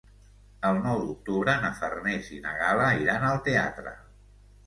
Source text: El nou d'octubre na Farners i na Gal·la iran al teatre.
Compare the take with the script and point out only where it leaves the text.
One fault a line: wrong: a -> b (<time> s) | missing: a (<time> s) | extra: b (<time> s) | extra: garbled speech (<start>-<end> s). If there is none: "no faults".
no faults